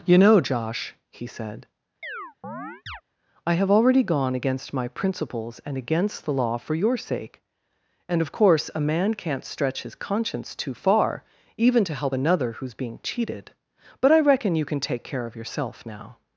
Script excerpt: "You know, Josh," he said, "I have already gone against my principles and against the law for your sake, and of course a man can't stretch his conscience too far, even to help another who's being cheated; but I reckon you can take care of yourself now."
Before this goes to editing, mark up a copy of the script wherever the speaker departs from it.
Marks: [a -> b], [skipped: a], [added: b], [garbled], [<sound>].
"You know, Josh," he said, [chirp] "I have already gone against my principles and against the law for your sake, and of course a man can't stretch his conscience too far, even to help another who's being cheated; but I reckon you can take care of yourself now."